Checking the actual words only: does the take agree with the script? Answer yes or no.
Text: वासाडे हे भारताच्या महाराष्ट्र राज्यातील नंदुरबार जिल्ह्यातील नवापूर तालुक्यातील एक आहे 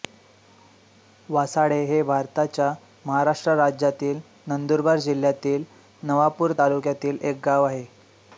no